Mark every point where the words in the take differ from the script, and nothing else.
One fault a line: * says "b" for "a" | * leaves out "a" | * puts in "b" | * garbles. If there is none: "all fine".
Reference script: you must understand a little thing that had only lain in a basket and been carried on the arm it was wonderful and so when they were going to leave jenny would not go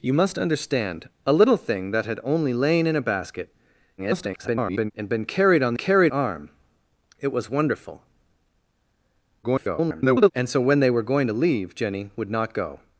* garbles
* says "carried" for "the"
* garbles